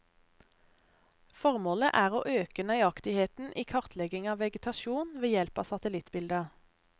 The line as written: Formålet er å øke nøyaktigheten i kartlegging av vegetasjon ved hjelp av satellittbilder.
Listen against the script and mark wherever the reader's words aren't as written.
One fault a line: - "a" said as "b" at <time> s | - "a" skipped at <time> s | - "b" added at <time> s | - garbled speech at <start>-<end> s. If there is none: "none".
none